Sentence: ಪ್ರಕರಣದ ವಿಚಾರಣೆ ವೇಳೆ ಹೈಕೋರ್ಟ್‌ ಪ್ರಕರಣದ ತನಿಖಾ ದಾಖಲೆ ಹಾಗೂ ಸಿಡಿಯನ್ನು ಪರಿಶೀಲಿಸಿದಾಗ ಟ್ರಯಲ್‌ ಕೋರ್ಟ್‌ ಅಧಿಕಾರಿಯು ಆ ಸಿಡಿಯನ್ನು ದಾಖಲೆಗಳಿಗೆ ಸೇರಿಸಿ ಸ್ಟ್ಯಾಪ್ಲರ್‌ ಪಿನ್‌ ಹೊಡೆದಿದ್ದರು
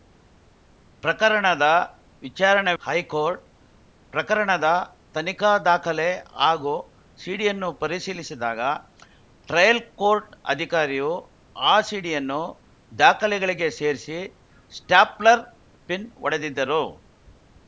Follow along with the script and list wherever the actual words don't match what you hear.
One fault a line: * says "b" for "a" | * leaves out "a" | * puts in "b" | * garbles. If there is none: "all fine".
* leaves out "ವೇಳೆ"